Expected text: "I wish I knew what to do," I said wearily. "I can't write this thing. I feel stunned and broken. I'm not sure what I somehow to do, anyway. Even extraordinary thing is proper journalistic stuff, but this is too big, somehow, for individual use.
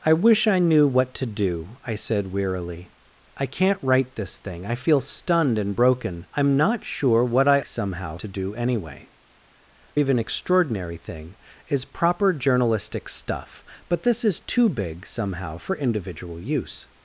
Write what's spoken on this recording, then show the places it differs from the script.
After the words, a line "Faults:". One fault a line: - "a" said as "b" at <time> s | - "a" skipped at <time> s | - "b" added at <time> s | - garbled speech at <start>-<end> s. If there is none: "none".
"I wish I knew what to do," I said wearily. "I can't write this thing. I feel stunned and broken. I'm not sure what I somehow to do, anyway. Even extraordinary thing is proper journalistic stuff, but this is too big, somehow, for individual use.
Faults:
none